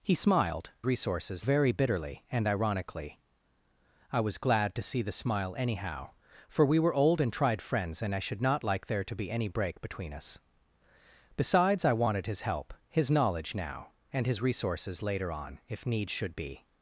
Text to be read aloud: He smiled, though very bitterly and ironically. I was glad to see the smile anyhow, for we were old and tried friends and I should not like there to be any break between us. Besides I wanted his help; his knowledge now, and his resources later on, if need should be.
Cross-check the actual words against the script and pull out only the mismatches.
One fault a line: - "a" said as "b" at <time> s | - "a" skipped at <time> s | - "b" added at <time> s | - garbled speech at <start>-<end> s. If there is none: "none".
- "though" said as "resources" at 0.8 s